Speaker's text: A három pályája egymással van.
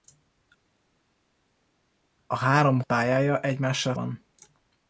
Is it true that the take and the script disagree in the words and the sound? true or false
false